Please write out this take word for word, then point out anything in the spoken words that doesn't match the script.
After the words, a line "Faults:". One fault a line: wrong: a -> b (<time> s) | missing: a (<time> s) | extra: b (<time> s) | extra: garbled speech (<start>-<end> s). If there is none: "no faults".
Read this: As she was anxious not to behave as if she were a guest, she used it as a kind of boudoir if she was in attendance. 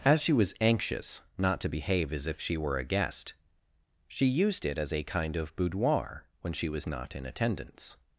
As she was anxious not to behave as if she were a guest, she used it as a kind of boudoir when she was not in attendance.
Faults:
wrong: if -> when (6.4 s)
extra: not (6.9 s)